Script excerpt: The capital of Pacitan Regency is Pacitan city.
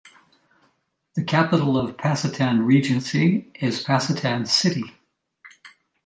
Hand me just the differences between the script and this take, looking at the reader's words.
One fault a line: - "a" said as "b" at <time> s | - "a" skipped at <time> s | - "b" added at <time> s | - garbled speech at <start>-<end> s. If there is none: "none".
none